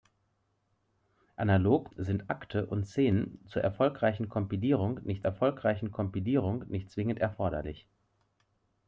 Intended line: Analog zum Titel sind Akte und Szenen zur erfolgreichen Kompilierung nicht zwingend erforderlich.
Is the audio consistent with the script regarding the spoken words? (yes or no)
no